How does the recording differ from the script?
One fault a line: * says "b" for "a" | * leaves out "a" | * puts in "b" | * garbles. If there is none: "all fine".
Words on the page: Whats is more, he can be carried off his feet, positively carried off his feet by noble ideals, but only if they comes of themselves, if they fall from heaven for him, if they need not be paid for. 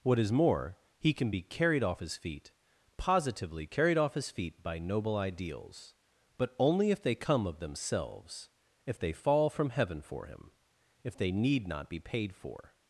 * says "What" for "Whats"
* says "come" for "comes"